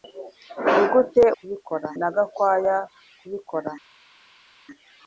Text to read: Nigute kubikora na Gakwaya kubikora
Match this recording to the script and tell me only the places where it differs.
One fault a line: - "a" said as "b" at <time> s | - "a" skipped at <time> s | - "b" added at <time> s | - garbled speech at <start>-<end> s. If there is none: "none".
none